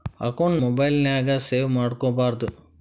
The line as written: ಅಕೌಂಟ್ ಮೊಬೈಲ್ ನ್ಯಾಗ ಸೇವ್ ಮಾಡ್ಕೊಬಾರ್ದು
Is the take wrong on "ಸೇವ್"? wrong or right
right